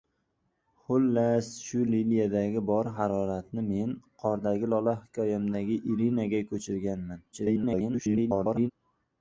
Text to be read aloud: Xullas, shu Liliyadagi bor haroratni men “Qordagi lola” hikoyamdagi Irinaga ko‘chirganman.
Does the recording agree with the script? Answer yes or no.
no